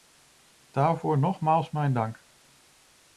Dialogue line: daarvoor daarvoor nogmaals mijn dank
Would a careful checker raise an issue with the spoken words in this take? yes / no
yes